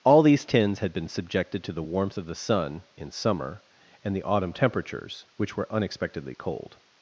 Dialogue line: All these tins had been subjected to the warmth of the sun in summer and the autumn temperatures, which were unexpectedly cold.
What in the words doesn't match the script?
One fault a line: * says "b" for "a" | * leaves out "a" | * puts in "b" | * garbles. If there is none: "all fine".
all fine